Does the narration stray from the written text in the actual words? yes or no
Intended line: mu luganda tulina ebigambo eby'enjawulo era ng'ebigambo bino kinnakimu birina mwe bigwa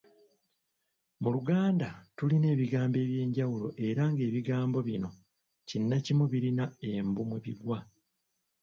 yes